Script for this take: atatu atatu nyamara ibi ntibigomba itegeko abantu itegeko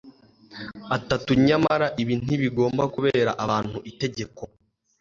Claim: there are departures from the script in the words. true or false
true